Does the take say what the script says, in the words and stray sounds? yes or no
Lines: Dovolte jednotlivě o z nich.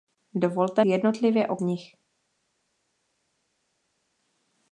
yes